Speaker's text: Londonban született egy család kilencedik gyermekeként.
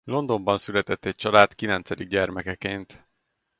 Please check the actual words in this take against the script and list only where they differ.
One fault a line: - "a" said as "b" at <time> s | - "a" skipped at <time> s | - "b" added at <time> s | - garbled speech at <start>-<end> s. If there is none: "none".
none